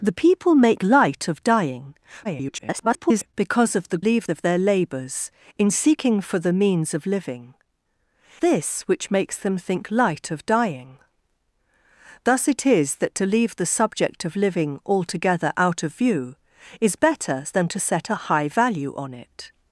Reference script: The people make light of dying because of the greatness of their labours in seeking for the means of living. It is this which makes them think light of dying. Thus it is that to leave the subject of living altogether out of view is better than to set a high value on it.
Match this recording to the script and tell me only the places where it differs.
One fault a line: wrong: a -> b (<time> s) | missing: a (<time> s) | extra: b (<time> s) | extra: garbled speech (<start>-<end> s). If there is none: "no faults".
extra: garbled speech (2.2-3.3 s)
wrong: greatness -> leave (4.0 s)
missing: It is (7.5 s)